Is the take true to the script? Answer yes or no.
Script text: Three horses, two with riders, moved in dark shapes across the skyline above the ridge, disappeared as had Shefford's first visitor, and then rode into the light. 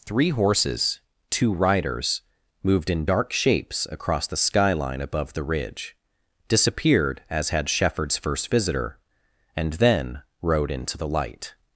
no